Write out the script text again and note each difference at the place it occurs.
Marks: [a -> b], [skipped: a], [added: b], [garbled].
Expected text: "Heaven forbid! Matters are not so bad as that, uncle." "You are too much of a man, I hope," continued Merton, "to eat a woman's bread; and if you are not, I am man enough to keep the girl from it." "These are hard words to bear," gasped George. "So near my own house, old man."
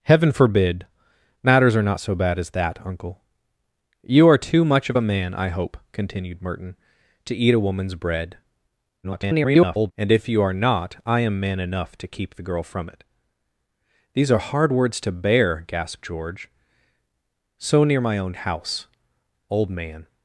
"Heaven forbid! Matters are not so bad as that, uncle." "You are too much of a man, I hope," continued Merton, "to eat a woman's bread; [garbled] and if you are not, I am man enough to keep the girl from it." "These are hard words to bear," gasped George. "So near my own house, old man."